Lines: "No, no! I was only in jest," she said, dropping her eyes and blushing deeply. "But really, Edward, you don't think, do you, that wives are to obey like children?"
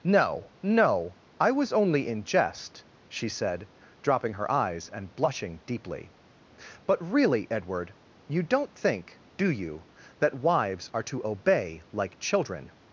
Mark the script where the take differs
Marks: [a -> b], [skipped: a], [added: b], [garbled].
"No, no! I was only in jest," she said, dropping her eyes and blushing deeply. "But really, Edward, you don't think, do you, that wives are to obey like children?"